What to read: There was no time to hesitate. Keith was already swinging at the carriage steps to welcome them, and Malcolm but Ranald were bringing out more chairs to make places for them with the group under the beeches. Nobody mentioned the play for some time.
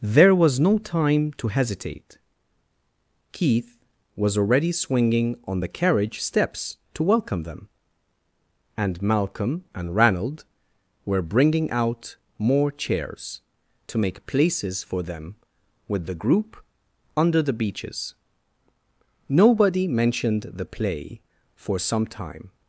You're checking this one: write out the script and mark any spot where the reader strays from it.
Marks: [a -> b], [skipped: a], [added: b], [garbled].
There was no time to hesitate. Keith was already swinging [at -> on] the carriage steps to welcome them, and Malcolm [but -> and] Ranald were bringing out more chairs to make places for them with the group under the beeches. Nobody mentioned the play for some time.